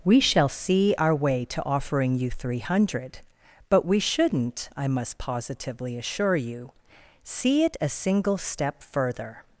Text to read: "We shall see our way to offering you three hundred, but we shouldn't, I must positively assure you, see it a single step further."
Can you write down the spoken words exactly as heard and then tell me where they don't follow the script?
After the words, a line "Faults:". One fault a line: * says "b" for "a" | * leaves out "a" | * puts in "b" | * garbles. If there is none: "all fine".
"We shall see our way to offering you three hundred, but we shouldn't, I must positively assure you, see it a single step further."
Faults:
all fine